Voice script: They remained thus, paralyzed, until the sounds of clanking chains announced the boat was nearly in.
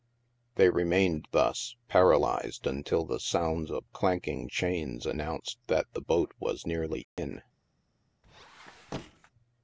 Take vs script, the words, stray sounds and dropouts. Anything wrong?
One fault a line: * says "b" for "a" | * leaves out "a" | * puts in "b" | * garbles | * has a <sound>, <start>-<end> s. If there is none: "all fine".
* puts in "that"
* has a dropout, 7.0-7.2 s
* has a squeak, 8.2-9.3 s